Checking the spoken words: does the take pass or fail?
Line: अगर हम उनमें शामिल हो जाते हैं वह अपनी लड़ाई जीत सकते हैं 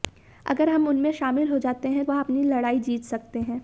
pass